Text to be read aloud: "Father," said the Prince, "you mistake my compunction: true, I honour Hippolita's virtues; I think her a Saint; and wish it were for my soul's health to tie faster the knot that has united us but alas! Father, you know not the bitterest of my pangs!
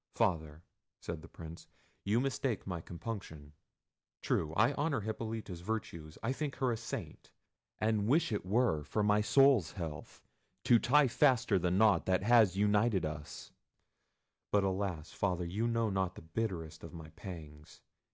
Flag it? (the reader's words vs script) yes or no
no